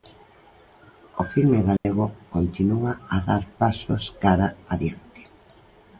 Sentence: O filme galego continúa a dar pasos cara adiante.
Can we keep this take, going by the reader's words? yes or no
yes